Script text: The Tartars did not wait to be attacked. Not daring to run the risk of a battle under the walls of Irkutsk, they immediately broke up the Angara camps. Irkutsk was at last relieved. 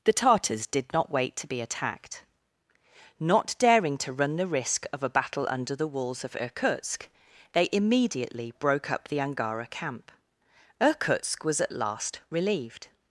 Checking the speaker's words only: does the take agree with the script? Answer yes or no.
no